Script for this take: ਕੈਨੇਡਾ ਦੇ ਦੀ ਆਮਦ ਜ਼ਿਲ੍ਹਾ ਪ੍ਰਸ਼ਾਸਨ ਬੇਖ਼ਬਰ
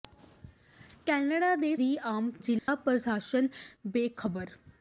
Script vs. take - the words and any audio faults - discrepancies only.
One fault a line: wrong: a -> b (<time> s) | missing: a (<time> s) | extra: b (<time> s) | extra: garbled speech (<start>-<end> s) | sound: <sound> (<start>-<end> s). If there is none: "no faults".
sound: dropout (2.6-2.7 s)